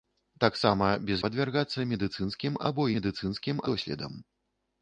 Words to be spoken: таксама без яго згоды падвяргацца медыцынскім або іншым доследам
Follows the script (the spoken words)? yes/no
no